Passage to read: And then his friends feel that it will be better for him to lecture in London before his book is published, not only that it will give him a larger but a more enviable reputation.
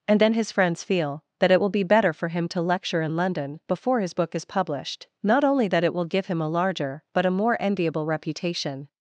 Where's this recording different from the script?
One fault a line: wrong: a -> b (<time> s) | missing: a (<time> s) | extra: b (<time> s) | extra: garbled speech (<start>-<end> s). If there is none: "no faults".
no faults